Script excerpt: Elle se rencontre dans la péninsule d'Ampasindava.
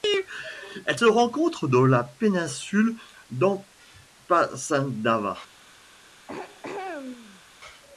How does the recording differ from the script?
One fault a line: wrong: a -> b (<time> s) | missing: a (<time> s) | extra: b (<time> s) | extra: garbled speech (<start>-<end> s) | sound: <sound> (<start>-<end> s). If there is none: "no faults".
sound: throat clearing (6.3-7.4 s)